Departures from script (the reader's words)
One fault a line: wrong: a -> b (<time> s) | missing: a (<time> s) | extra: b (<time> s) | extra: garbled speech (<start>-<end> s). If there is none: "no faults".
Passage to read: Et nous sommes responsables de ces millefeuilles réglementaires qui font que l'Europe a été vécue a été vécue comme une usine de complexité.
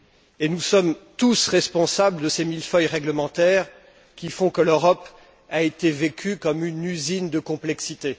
extra: tous (1.2 s)
missing: a été vécue (6.4 s)